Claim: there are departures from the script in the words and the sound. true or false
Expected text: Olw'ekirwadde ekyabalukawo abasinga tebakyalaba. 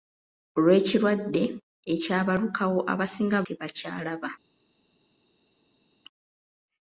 false